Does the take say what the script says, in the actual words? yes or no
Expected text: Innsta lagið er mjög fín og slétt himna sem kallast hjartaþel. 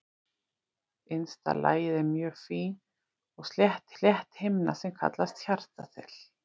no